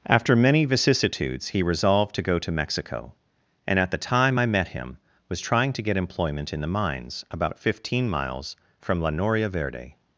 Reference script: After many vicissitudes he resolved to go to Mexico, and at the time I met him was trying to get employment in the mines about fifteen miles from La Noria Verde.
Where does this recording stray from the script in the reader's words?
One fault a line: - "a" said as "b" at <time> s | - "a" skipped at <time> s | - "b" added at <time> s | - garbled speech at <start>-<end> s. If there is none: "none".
none